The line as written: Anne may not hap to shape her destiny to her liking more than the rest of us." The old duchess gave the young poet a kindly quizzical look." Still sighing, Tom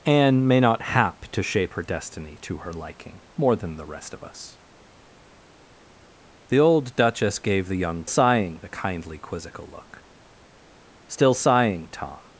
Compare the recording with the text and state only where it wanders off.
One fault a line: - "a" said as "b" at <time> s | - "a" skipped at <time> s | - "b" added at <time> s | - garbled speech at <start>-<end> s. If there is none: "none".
- "poet" said as "sighing" at 8.1 s